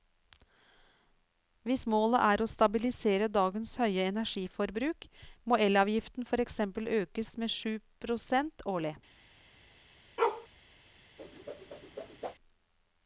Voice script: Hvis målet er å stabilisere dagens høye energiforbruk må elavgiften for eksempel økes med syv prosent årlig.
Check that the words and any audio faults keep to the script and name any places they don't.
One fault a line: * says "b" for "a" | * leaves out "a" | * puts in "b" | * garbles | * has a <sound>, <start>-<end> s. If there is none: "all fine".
* has a bark, 10.2-10.5 s
* has a whoosh, 11.2-12.3 s